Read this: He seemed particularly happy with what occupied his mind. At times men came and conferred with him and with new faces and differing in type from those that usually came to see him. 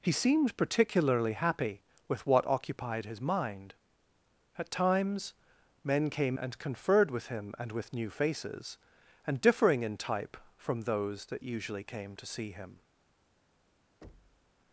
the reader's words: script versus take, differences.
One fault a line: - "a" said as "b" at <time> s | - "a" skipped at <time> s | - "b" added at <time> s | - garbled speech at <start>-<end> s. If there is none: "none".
none